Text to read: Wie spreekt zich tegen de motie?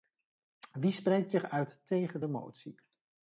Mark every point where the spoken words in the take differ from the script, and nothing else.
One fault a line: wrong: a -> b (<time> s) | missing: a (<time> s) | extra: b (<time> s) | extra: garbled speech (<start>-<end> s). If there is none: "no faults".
extra: uit (1.4 s)